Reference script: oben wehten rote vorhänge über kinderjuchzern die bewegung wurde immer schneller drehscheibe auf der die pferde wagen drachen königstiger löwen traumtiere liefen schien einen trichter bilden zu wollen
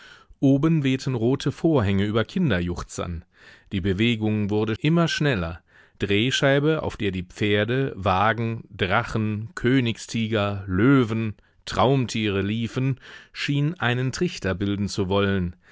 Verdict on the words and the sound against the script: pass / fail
pass